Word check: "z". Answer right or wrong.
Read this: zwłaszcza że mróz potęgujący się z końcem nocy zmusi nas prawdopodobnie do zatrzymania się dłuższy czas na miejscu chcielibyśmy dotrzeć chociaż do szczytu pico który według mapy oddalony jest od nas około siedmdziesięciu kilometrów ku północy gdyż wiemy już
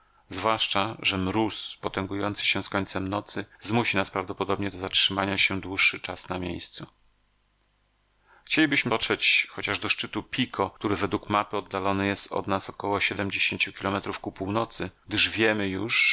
right